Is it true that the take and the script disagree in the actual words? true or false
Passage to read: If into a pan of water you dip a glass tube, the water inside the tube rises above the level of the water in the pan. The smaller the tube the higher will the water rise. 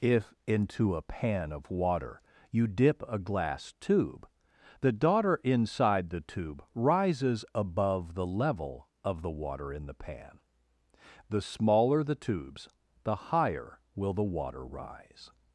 true